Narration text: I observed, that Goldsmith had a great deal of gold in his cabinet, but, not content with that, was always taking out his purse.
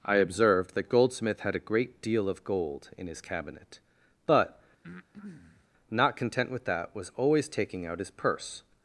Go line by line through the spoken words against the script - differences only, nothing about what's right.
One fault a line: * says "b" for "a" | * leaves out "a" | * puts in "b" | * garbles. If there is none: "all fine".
all fine